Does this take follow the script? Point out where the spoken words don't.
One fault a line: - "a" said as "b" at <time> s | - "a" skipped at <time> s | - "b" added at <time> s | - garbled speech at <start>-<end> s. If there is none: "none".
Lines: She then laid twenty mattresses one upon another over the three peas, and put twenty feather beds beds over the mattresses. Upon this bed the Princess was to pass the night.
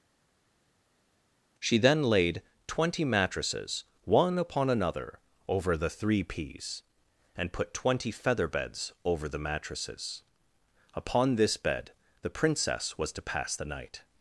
- "beds" skipped at 8.9 s